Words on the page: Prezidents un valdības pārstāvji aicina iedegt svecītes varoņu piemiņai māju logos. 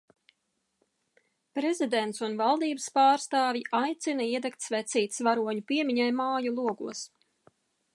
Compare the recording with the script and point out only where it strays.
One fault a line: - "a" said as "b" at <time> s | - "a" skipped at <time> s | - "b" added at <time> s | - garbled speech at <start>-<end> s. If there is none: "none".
none